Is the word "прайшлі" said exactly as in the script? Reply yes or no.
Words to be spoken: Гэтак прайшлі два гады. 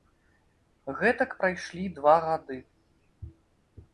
yes